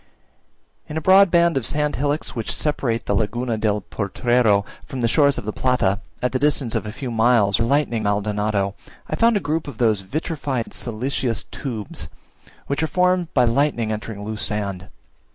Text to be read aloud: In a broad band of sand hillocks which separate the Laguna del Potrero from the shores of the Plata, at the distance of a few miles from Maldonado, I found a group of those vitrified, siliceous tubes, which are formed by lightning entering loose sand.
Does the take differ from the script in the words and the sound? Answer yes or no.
yes